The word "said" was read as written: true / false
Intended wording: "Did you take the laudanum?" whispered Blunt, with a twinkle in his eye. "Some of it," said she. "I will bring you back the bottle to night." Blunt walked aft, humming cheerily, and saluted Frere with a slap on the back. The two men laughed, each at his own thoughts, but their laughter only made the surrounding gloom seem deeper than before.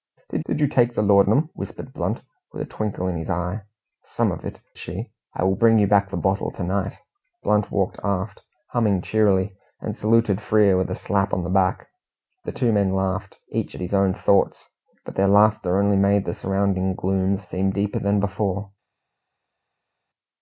false